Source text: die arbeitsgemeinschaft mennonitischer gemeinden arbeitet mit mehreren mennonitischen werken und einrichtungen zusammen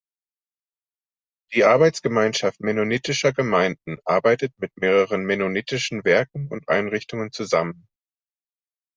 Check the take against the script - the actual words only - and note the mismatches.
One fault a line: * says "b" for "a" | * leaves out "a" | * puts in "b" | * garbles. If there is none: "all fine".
all fine